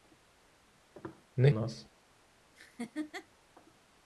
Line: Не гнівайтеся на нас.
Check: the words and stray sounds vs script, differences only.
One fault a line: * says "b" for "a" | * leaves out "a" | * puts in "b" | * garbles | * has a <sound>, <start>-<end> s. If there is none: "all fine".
* leaves out "гнівайтеся на"
* has a laugh, 2.6-3.3 s